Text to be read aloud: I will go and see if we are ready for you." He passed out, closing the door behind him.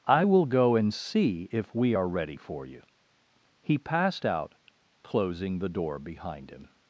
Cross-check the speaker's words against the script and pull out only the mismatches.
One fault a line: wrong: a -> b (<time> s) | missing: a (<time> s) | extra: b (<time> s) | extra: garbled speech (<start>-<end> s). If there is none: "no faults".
no faults